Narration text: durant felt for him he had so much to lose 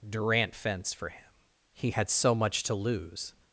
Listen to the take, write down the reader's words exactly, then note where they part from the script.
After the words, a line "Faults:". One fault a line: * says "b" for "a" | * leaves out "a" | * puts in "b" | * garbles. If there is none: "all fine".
durant fence for him he had so much to lose
Faults:
* says "fence" for "felt"